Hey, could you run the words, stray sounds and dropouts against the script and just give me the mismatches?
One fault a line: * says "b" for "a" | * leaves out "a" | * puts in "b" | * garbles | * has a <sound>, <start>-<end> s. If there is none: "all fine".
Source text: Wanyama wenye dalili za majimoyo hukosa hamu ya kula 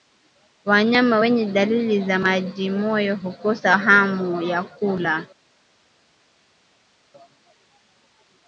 all fine